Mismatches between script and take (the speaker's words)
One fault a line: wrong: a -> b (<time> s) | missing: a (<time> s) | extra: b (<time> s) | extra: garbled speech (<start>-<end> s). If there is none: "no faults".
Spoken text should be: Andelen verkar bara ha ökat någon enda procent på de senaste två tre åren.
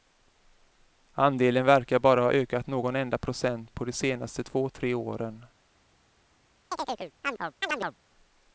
no faults